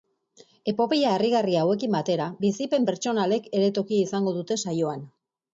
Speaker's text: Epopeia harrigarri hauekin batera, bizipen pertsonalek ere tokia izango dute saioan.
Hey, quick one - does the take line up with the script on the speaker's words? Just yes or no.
yes